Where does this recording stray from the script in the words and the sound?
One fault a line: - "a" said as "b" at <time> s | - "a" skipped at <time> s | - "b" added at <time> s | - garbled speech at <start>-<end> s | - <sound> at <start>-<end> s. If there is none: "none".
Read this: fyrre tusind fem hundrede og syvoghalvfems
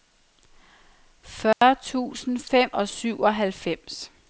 - dropout at 1.5-1.6 s
- "hundrede" skipped at 2.7 s